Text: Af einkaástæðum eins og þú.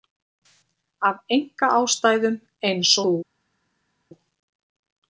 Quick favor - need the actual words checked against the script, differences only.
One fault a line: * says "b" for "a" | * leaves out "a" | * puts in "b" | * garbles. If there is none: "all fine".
* leaves out "og"